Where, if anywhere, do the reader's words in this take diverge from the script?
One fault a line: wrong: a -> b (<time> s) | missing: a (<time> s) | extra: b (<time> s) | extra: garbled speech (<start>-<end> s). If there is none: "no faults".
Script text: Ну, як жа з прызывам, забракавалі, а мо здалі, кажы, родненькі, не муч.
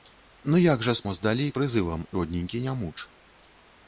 missing: прызывам забракавалі а (1.1 s)
wrong: кажы -> прызывам (1.6 s)